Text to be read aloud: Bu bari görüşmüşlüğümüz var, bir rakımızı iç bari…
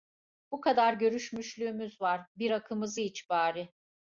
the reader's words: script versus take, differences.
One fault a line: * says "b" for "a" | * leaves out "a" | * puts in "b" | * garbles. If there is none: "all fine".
* says "kadar" for "bari"